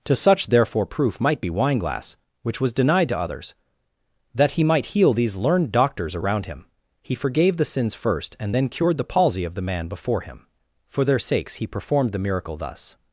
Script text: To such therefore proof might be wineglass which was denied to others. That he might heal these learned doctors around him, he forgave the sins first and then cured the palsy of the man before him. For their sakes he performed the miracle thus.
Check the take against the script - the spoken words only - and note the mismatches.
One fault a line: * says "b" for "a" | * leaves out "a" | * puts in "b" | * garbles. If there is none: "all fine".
all fine